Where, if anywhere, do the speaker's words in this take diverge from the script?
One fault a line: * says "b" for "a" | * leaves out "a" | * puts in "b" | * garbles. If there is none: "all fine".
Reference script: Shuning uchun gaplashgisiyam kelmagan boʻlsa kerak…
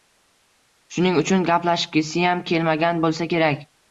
all fine